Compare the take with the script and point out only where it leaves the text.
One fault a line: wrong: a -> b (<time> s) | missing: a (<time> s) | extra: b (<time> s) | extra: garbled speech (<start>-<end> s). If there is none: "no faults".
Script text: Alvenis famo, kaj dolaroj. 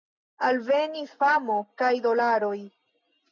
no faults